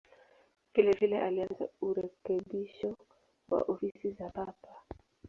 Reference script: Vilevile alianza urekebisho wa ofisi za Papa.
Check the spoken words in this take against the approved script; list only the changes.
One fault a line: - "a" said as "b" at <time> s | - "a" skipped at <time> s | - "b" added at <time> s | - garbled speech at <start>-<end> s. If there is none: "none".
none